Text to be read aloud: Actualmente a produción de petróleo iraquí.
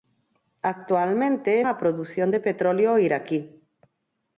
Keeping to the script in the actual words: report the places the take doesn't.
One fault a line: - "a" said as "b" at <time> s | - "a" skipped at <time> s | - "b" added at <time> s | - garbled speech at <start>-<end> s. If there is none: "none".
none